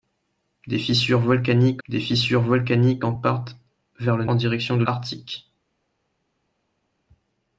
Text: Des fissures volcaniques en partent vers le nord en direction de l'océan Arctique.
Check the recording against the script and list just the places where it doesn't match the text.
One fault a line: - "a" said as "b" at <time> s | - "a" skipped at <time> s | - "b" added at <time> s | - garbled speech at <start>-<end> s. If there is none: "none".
- "des fissures volcaniques" added at 1.9 s
- "nord" skipped at 4.2 s
- "l'océan" skipped at 4.9 s